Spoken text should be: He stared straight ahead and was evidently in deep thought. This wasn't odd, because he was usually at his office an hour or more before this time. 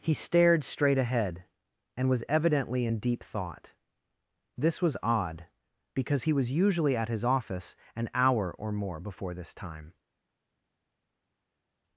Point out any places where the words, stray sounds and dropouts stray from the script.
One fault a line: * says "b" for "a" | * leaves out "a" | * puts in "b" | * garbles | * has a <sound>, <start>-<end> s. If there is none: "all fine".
* says "was" for "wasn't"